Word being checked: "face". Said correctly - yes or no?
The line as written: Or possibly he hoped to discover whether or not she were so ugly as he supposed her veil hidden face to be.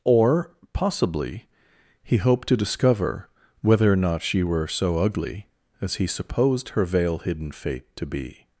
no